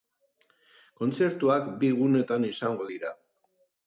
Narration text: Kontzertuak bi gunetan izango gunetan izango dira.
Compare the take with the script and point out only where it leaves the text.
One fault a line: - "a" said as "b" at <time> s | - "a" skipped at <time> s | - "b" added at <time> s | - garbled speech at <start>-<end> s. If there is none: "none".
- "gunetan izango" skipped at 2.9 s